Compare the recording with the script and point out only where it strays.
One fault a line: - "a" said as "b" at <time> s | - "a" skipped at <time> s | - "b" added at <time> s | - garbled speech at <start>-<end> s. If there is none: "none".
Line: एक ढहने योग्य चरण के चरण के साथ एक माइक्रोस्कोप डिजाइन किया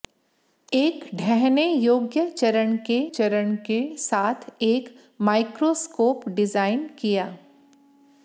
none